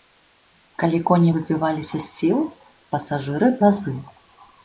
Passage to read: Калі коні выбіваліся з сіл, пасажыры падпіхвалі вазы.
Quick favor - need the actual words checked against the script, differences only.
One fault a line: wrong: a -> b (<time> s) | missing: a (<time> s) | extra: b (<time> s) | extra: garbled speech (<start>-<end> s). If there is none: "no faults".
missing: падпіхвалі (3.5 s)